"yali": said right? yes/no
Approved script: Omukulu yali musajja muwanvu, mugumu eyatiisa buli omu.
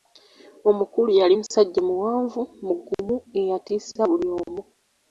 yes